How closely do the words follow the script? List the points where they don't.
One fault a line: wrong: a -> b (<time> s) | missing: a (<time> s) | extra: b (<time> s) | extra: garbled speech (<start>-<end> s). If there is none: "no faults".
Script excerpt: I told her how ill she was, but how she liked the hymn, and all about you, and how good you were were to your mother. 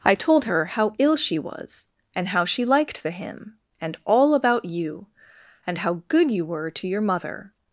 wrong: but -> and (2.1 s)
missing: were (6.7 s)